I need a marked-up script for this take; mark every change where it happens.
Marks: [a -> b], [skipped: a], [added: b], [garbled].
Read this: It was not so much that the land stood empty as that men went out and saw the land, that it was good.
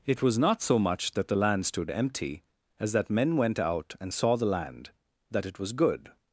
It was not so much that the land stood empty as that men went out and saw the land, that it was good.